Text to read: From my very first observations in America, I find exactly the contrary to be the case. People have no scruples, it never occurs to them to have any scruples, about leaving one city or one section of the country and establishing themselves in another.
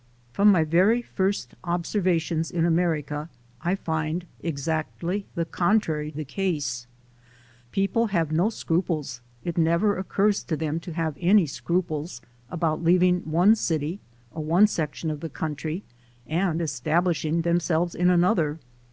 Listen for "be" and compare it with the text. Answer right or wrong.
wrong